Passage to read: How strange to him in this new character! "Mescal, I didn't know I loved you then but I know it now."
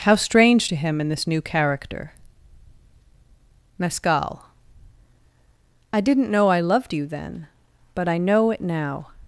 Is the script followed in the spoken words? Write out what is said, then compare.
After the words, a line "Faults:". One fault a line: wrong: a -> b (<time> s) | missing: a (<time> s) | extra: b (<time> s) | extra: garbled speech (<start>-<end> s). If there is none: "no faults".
How strange to him in this new character! "Mescal, I didn't know I loved you then but I know it now."
Faults:
no faults